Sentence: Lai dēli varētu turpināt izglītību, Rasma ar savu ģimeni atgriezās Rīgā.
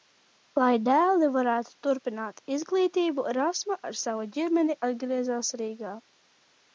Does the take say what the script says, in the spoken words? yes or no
yes